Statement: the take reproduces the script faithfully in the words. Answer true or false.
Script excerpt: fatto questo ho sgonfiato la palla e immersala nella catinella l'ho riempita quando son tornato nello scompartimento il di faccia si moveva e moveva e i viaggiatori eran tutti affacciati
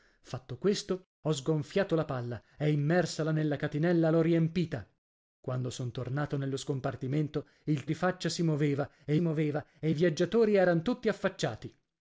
true